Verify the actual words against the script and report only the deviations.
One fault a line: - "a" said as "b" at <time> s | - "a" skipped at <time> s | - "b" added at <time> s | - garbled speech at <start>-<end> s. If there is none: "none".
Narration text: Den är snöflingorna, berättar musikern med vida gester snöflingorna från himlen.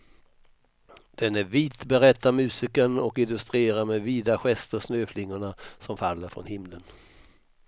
- "snöflingorna" said as "vit" at 1.4 s
- "och illustrerar" added at 3.0 s
- "som faller" added at 5.8 s